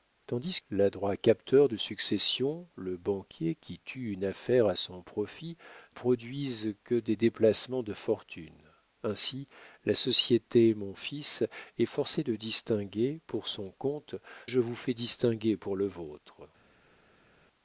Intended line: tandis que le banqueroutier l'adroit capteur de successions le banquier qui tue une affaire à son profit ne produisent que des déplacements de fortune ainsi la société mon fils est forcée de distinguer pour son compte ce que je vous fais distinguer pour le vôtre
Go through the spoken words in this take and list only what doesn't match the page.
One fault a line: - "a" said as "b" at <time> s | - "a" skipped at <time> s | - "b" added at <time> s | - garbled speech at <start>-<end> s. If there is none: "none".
- "que le banqueroutier" skipped at 0.6 s
- "ne" skipped at 5.6 s
- "ce que" skipped at 14.1 s